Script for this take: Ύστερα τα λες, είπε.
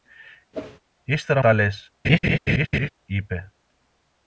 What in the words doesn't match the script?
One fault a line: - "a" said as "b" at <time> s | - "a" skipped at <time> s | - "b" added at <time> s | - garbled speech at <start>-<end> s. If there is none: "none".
none